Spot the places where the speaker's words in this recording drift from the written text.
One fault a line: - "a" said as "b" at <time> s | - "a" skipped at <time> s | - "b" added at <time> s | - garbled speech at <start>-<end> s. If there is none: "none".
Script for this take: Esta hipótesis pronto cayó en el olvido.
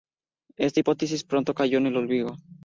none